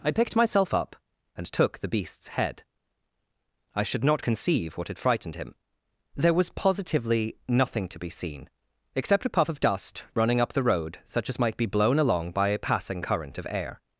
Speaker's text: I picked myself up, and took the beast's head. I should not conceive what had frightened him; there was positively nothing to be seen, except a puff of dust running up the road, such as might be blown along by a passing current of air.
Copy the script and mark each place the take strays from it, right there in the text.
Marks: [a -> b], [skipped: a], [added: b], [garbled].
I picked myself up, and took the beast's head. I should not conceive what had frightened him; there was positively nothing to be seen, except a puff of dust running up the road, such as might be blown along by a passing current of air.